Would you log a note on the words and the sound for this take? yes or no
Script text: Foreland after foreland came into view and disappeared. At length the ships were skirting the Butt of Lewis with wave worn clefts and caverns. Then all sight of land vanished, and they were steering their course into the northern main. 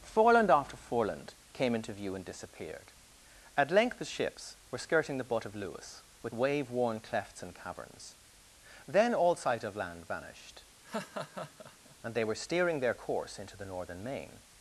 yes